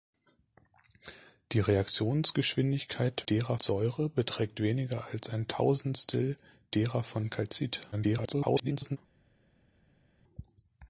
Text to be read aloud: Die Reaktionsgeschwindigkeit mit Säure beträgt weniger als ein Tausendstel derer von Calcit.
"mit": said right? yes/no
no